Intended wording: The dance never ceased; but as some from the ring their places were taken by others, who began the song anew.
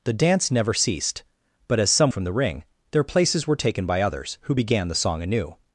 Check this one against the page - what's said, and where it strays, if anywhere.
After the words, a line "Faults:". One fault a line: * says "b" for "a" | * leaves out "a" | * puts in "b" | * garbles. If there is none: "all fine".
The dance never ceased; but as some from the ring their places were taken by others, who began the song anew.
Faults:
all fine